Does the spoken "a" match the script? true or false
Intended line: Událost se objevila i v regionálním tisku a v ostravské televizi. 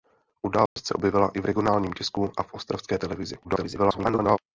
true